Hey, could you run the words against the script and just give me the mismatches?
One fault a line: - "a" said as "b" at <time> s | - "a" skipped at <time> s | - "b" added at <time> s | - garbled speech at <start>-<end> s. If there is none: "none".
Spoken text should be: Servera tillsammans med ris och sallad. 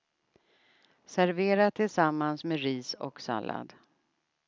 none